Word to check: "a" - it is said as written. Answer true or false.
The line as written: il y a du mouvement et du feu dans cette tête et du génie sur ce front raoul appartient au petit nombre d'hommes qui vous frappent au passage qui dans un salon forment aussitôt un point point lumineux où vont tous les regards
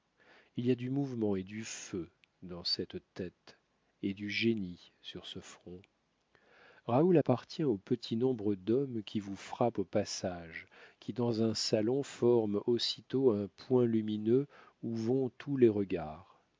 true